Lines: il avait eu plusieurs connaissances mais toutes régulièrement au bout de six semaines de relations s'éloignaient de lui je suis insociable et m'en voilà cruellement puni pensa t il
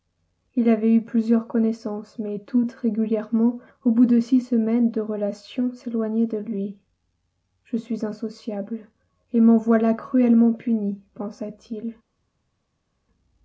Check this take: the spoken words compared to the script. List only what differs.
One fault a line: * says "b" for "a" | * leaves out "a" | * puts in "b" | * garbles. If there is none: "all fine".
all fine